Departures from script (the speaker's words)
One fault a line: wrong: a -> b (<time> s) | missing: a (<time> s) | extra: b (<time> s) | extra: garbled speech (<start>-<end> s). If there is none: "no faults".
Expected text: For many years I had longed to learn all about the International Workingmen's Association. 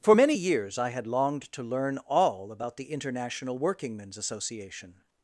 no faults